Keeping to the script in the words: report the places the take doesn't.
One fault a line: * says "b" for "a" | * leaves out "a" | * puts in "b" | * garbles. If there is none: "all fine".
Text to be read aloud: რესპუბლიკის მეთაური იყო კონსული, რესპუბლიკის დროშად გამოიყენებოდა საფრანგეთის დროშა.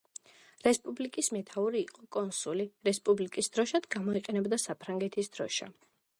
all fine